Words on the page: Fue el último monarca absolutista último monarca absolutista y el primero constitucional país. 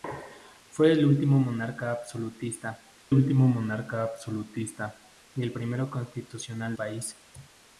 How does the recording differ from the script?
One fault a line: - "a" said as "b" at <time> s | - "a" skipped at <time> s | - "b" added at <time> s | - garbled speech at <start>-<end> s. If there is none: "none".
none